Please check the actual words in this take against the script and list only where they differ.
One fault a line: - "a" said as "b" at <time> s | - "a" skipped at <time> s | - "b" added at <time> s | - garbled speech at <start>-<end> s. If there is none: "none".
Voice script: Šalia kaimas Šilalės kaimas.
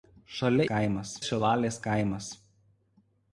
none